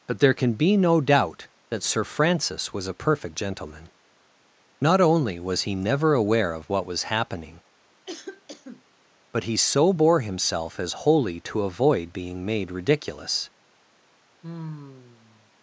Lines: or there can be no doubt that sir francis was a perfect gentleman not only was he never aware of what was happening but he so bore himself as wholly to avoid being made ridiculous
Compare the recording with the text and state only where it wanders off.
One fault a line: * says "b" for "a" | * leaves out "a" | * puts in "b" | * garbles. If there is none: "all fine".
* says "but" for "or"